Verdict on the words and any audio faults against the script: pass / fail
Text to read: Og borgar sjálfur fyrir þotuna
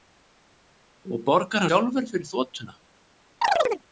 fail